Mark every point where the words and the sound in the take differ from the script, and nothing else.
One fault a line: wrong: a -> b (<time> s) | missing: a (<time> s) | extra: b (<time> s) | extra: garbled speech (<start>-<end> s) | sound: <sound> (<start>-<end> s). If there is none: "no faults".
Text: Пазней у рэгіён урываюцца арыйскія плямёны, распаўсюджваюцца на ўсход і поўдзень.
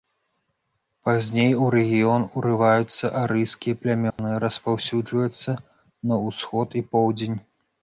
sound: dropout (4.1-4.2 s)